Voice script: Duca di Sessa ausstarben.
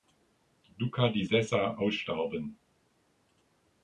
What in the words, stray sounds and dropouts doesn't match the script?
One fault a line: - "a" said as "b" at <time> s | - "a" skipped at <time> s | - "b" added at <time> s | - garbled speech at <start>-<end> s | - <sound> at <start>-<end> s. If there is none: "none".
none